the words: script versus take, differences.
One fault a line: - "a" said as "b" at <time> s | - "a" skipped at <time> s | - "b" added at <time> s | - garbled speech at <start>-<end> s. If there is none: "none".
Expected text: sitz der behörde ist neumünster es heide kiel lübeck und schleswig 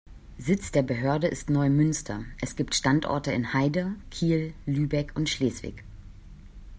- "gibt standorte in" added at 2.5 s